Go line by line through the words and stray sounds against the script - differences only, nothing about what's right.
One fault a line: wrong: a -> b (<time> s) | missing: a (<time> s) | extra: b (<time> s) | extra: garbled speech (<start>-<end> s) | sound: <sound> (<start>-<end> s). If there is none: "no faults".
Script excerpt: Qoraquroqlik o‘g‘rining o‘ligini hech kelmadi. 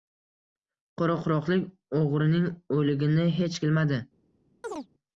sound: chirp (4.6-4.9 s)